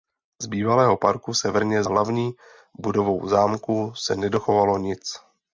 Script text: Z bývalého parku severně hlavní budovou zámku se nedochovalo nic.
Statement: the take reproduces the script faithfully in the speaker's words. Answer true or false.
true